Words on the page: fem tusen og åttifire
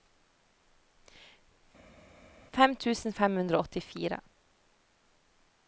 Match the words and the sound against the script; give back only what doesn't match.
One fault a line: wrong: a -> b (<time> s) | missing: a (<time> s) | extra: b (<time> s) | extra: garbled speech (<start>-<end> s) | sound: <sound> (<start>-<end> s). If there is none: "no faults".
extra: fem hundre (3.2 s)